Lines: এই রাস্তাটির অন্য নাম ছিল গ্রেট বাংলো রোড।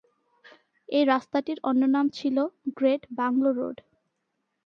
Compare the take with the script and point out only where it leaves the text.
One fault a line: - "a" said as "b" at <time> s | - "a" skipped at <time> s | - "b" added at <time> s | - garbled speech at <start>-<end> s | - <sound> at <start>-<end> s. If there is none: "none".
none